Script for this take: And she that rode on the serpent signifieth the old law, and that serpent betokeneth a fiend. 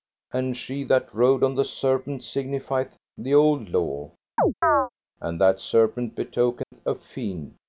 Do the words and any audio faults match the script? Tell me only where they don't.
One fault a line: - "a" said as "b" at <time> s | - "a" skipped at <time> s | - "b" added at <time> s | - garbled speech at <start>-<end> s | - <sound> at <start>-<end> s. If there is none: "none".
- chirp at 4.4-4.9 s
- dropout at 6.6-6.7 s